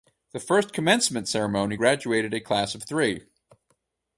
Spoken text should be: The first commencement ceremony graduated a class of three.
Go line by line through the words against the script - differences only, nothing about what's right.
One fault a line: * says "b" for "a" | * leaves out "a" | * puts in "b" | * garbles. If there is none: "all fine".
all fine